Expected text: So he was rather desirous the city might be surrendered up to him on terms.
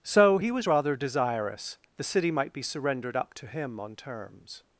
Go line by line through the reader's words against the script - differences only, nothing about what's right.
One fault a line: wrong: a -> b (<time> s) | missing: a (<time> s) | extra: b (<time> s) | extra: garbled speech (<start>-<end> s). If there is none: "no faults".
no faults